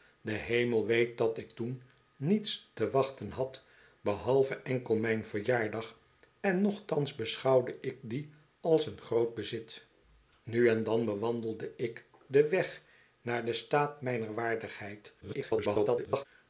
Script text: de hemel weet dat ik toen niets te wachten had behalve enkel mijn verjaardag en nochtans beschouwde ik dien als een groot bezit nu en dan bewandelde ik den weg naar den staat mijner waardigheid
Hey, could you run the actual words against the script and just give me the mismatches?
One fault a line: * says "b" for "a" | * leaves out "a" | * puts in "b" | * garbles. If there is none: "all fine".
* garbles